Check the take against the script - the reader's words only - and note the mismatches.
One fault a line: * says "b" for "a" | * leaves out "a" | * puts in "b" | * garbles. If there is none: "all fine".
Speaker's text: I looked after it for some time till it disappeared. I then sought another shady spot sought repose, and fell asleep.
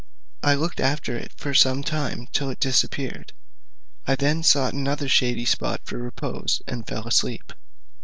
* says "for" for "sought"